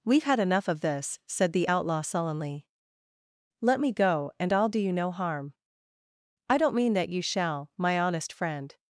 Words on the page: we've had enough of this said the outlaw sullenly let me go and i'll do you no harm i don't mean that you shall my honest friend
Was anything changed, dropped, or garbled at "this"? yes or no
no